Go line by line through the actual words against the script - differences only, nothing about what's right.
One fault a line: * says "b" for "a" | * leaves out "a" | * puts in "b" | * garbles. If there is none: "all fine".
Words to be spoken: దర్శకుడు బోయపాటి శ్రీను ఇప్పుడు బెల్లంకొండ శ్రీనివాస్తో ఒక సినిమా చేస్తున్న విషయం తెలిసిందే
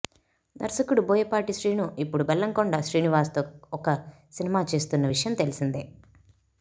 all fine